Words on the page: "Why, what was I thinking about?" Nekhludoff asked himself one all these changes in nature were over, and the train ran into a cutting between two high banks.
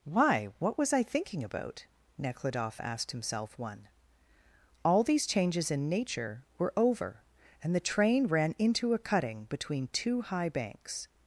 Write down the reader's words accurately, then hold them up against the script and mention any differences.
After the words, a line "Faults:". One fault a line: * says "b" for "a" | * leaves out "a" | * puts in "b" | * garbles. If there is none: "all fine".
"Why, what was I thinking about?" Nekhludoff asked himself one all these changes in nature were over, and the train ran into a cutting between two high banks.
Faults:
all fine